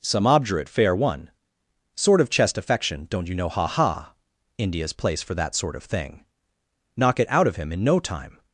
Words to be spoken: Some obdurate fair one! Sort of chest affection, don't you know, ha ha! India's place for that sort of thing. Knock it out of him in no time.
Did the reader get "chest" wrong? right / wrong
right